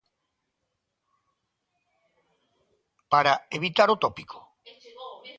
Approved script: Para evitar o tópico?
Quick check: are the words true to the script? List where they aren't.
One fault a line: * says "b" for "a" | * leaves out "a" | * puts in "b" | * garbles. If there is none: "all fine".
all fine